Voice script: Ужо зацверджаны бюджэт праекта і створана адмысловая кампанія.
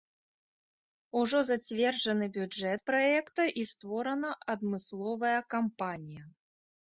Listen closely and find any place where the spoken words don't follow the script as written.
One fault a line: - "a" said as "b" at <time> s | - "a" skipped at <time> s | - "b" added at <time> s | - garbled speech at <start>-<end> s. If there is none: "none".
none